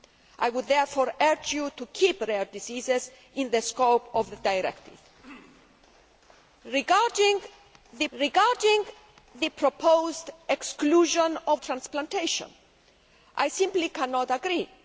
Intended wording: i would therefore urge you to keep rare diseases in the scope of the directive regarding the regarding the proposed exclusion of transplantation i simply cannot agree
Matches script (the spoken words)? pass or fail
pass